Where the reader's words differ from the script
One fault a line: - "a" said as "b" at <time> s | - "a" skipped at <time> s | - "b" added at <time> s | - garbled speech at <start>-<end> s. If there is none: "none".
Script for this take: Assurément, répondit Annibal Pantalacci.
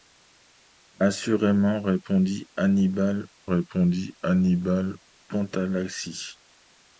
- "répondit Annibal" added at 3.5 s